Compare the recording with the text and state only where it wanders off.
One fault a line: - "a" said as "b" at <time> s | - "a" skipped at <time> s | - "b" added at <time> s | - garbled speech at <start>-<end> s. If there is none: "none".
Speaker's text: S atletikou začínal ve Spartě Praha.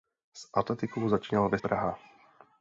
- "Spartě" skipped at 1.6 s